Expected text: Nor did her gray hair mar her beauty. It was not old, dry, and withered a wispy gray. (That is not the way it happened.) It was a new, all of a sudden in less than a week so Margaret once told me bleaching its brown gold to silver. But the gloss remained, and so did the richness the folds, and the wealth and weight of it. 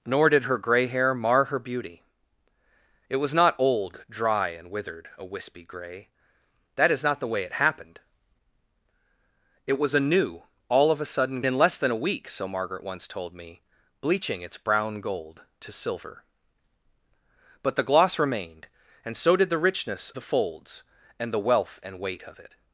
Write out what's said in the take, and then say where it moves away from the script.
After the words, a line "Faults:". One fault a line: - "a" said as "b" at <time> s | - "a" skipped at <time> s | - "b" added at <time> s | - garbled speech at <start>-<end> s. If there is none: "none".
Nor did her gray hair mar her beauty. It was not old, dry, and withered a wispy gray. (That is not the way it happened.) It was a new, all of a sudden in less than a week so Margaret once told me bleaching its brown gold to silver. But the gloss remained, and so did the richness the folds, and the wealth and weight of it.
Faults:
none